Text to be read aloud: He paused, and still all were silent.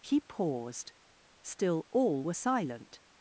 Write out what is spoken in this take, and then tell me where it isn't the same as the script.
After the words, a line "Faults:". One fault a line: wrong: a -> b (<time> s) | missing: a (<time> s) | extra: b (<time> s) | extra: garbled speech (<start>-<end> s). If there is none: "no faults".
He paused, still all were silent.
Faults:
missing: and (0.9 s)